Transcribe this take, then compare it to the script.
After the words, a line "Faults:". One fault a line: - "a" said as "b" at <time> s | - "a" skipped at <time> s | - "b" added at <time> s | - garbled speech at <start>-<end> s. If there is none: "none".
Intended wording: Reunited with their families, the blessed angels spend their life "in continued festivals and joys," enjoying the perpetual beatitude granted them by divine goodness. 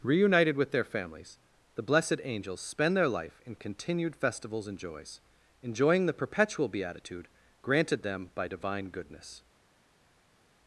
Reunited with their families, the blessed angels spend their life "in continued festivals and joys," enjoying the perpetual beatitude granted them by divine goodness.
Faults:
none